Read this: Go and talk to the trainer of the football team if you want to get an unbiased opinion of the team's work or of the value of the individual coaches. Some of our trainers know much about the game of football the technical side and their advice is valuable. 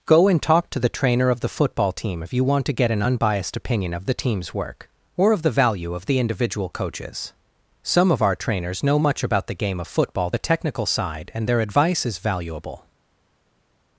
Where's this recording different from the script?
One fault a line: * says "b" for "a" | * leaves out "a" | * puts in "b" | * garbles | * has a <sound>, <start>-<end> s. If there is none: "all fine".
all fine